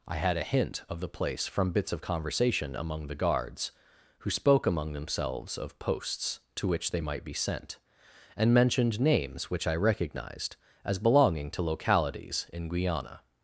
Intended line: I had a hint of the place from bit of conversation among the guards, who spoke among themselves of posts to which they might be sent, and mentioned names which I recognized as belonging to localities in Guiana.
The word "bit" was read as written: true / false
false